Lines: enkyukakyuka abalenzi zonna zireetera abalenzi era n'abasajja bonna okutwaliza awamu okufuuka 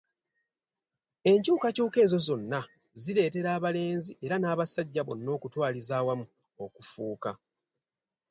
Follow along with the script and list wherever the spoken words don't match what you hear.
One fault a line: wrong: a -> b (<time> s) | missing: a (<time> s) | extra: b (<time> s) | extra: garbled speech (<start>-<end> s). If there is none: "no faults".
wrong: abalenzi -> ezo (2.0 s)